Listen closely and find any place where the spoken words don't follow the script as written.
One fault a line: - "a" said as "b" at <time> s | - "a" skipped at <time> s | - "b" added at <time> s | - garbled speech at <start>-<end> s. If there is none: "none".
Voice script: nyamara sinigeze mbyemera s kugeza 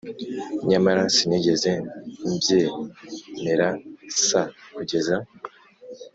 none